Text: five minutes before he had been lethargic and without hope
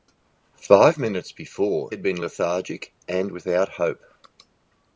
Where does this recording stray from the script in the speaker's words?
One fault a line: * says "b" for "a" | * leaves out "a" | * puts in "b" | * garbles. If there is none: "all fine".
* leaves out "he"